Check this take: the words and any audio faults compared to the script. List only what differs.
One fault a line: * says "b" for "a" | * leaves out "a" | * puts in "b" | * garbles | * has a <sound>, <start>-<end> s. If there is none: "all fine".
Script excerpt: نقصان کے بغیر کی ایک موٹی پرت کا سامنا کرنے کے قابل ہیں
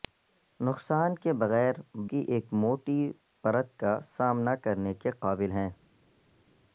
all fine